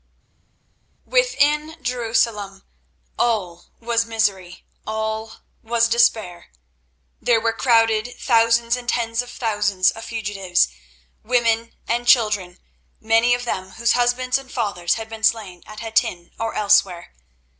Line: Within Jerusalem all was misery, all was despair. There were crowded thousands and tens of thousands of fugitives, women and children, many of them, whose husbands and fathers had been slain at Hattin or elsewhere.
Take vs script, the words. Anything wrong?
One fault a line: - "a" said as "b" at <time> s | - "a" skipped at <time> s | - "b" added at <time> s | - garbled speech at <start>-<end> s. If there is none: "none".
none